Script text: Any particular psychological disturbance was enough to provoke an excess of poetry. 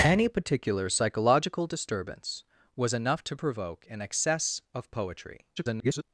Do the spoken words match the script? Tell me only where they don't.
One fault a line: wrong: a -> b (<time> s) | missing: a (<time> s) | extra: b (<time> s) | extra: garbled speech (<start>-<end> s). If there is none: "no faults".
extra: garbled speech (5.6-6.0 s)